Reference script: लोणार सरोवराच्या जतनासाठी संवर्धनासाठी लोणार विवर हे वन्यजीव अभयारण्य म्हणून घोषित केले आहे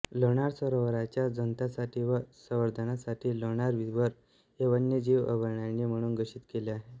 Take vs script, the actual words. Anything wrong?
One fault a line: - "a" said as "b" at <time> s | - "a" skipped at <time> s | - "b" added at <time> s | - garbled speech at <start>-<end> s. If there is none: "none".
- "व" added at 2.0 s